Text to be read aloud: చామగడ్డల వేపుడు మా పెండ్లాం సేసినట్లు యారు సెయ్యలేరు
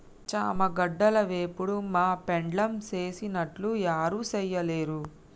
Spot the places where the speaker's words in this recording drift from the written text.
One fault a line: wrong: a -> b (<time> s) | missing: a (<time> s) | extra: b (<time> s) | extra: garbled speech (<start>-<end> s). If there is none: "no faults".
no faults